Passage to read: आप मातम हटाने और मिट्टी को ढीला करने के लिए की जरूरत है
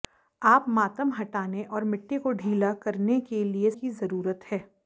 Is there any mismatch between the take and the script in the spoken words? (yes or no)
no